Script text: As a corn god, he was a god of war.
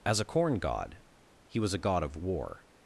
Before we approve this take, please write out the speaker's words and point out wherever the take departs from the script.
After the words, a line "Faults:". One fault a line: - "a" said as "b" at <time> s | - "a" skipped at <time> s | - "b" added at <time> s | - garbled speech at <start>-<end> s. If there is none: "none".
As a corn god, he was a god of war.
Faults:
none